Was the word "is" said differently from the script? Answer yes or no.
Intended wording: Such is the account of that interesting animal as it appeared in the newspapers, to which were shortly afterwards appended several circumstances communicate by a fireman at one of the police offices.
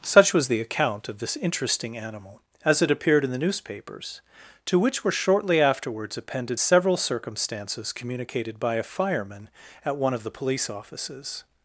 yes